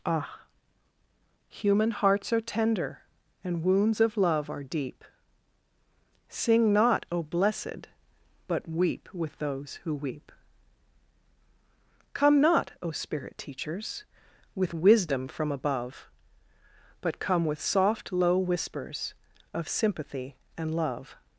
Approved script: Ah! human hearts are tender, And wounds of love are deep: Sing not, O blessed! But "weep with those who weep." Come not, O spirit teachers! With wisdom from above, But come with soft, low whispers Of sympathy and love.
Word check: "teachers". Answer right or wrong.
right